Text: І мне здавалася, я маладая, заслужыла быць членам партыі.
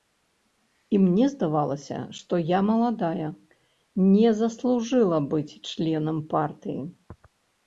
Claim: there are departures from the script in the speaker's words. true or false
true